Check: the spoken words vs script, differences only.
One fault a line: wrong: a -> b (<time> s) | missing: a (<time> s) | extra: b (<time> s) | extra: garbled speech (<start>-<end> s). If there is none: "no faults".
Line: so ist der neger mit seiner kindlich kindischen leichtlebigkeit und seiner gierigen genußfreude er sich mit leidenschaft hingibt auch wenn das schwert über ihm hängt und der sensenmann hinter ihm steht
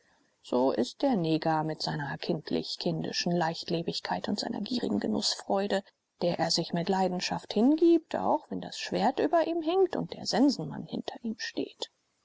extra: der (6.2 s)